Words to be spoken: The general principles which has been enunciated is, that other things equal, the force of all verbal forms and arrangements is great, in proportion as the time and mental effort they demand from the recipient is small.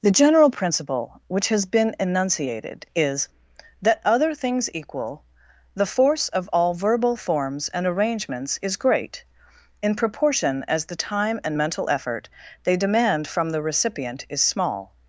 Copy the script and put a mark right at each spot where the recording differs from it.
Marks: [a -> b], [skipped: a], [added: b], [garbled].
The general [principles -> principle] which has been enunciated is, that other things equal, the force of all verbal forms and arrangements is great, in proportion as the time and mental effort they demand from the recipient is small.